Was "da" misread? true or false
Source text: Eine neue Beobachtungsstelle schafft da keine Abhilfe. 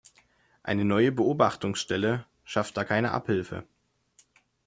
false